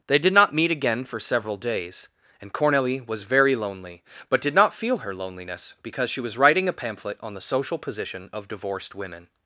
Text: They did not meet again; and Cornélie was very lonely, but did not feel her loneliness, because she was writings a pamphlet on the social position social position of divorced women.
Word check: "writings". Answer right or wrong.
wrong